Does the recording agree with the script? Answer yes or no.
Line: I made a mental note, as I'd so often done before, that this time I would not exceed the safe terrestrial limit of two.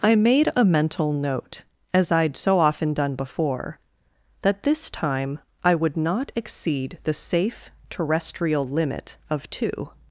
yes